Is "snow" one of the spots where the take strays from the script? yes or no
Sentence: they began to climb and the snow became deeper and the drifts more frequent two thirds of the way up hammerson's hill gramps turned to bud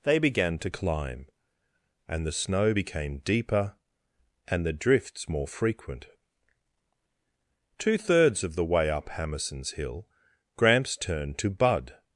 no